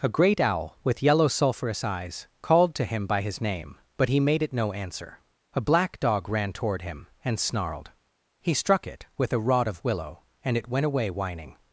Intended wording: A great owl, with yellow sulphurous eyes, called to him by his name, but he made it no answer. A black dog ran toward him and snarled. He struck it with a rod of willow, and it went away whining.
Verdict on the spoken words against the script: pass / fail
pass